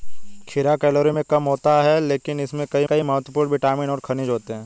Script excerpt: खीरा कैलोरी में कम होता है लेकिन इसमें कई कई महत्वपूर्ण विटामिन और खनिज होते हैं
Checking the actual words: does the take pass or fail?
pass